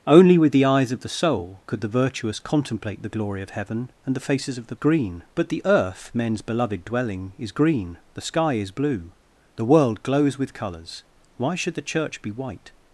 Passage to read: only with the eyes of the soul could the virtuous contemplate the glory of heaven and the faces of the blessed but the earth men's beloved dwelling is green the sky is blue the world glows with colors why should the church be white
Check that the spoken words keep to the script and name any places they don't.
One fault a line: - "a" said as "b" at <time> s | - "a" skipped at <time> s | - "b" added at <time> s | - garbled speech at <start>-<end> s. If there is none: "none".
- "blessed" said as "green" at 4.7 s